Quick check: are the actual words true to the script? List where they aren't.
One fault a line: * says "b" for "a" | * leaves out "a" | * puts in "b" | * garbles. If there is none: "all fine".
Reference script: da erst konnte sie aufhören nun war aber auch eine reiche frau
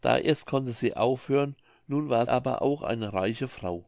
all fine